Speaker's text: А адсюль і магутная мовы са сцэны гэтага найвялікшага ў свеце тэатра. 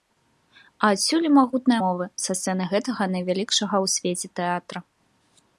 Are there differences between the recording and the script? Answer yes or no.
no